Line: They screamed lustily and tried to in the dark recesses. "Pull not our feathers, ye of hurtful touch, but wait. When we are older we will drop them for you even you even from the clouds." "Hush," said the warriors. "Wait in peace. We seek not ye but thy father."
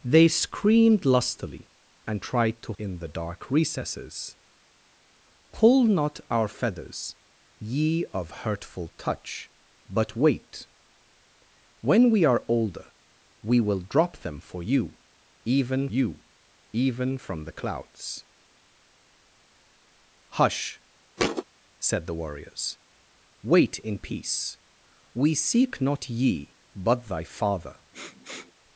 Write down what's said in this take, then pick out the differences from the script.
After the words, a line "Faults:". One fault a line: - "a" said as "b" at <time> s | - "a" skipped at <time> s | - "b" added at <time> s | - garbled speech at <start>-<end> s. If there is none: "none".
They screamed lustily and tried to in the dark recesses. "Pull not our feathers, ye of hurtful touch, but wait. When we are older we will drop them for you even you even from the clouds." "Hush," said the warriors. "Wait in peace. We seek not ye but thy father."
Faults:
none